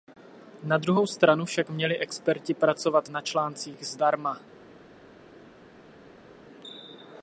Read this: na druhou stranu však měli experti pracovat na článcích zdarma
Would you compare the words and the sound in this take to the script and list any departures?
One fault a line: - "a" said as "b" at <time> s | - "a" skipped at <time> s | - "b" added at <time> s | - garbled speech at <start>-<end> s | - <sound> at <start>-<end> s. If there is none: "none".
none